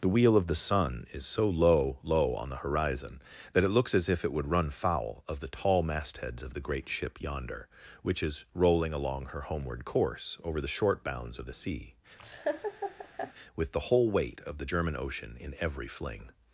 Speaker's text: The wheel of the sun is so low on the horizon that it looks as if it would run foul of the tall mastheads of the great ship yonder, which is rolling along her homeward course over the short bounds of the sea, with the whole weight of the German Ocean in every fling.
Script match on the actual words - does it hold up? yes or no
no